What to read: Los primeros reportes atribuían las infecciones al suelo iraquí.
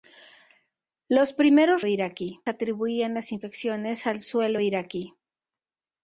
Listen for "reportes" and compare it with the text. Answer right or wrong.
wrong